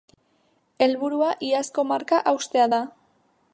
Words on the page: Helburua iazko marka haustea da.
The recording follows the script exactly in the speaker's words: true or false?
true